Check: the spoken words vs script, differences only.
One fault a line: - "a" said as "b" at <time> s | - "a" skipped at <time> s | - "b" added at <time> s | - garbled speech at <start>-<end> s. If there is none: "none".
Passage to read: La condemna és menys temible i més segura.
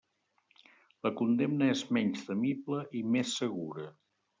none